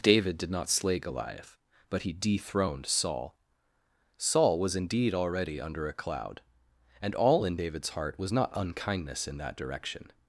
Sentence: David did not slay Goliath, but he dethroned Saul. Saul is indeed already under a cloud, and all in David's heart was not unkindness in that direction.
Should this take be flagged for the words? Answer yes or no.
yes